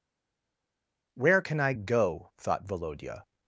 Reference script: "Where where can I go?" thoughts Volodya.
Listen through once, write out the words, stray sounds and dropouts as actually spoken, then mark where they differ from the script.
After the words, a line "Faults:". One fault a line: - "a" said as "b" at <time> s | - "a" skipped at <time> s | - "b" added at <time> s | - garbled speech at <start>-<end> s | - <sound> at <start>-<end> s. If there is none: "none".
"Where can I go?" thought Volodya.
Faults:
- "where" skipped at 1.4 s
- "thoughts" said as "thought" at 2.4 s